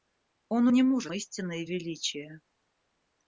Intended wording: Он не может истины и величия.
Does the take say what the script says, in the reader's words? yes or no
yes